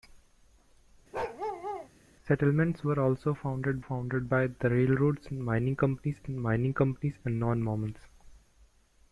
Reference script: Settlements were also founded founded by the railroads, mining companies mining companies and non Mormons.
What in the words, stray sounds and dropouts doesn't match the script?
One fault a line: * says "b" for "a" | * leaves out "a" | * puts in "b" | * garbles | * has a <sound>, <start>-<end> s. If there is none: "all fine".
* has a bark, 1.1-1.9 s